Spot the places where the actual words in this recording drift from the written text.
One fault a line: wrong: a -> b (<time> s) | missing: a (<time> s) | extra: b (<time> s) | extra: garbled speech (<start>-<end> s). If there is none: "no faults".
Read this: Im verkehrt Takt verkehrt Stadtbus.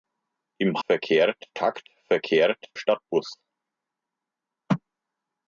no faults